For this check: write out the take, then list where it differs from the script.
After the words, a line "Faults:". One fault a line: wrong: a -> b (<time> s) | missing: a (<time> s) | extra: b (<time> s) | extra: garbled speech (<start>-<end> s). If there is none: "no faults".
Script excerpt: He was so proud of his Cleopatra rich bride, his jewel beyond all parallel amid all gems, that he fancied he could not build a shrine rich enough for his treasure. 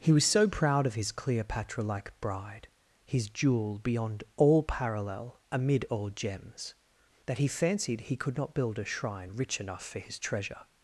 He was so proud of his Cleopatra like bride, his jewel beyond all parallel amid all gems, that he fancied he could not build a shrine rich enough for his treasure.
Faults:
wrong: rich -> like (1.8 s)